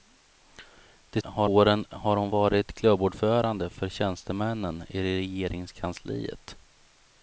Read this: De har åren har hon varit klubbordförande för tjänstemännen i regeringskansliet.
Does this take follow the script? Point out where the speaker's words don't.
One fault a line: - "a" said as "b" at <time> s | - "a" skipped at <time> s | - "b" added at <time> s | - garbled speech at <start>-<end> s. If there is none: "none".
none